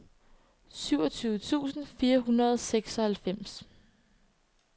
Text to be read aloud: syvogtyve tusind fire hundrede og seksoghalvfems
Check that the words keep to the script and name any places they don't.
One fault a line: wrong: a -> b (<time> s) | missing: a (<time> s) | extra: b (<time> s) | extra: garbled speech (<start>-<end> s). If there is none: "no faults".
no faults